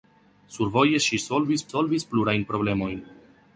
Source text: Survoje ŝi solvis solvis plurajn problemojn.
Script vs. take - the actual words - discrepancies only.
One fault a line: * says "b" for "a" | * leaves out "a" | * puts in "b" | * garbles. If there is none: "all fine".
all fine